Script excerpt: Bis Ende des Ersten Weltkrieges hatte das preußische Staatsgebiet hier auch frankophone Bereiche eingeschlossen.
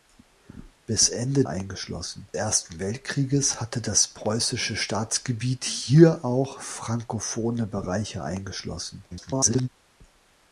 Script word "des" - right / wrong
wrong